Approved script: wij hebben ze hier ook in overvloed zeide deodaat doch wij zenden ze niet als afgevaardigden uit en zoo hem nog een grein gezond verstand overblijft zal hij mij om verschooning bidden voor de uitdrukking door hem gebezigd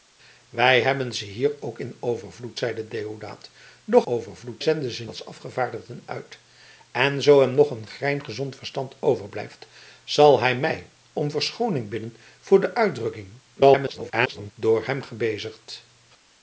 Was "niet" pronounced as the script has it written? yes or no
no